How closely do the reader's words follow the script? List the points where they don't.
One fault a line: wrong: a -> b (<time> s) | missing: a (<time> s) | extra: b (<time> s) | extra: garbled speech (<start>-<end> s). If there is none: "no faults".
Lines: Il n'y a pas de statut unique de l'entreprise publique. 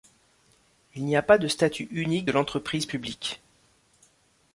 no faults